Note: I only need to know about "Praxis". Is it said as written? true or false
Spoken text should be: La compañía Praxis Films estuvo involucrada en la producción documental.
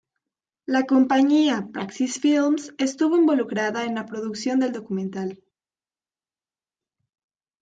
true